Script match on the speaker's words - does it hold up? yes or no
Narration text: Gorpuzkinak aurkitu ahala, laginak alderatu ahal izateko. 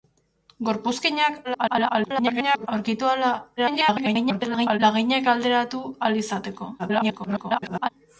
no